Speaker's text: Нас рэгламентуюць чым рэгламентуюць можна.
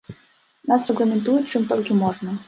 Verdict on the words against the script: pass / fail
fail